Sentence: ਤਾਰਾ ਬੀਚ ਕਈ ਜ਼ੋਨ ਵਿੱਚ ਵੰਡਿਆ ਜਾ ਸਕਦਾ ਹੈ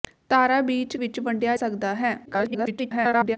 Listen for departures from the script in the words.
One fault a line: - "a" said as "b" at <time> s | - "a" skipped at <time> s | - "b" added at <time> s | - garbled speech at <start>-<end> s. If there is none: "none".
- "ਕਈ ਜ਼ੋਨ" skipped at 0.9 s
- "ਜਾ" skipped at 1.6 s
- garbled speech at 2.3-3.4 s